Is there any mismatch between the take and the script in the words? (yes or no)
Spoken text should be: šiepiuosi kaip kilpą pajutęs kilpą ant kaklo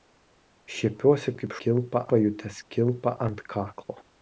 no